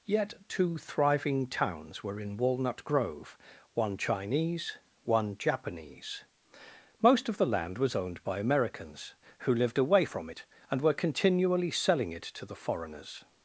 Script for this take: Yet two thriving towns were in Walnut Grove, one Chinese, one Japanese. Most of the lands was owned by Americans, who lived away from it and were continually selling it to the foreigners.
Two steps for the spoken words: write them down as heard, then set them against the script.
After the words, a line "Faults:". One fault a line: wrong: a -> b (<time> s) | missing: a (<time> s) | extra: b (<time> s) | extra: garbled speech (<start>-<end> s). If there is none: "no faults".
Yet two thriving towns were in Walnut Grove, one Chinese, one Japanese. Most of the land was owned by Americans, who lived away from it and were continually selling it to the foreigners.
Faults:
wrong: lands -> land (7.5 s)